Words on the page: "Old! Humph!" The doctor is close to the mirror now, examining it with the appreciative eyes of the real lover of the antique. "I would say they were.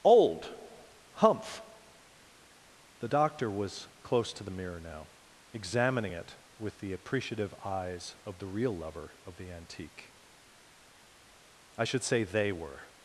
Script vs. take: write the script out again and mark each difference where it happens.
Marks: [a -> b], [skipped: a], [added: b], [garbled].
"Old! Humph!" The doctor [is -> was] close to the mirror now, examining it with the appreciative eyes of the real lover of the antique. "I [would -> should] say they were.